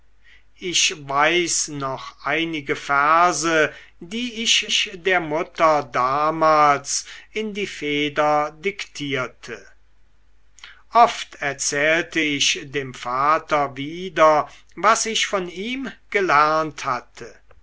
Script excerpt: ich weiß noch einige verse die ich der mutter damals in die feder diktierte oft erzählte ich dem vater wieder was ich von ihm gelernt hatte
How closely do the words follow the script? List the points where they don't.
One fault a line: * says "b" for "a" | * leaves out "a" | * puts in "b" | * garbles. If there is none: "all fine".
* puts in "ich"